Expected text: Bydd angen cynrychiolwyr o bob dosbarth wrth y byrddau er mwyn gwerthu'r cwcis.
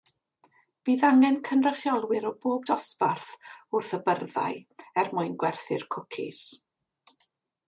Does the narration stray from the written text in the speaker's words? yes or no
no